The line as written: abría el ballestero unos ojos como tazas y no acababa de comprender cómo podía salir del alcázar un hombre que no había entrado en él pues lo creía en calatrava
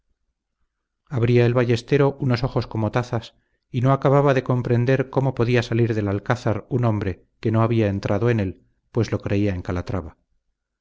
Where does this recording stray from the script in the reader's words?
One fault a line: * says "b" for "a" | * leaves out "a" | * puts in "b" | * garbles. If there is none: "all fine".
all fine